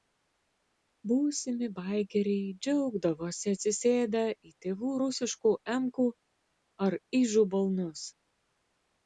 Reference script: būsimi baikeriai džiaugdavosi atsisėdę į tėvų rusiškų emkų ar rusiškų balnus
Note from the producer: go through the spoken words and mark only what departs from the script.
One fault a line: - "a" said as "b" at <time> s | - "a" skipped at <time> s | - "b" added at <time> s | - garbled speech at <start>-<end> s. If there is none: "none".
- "rusiškų" said as "ižų" at 7.2 s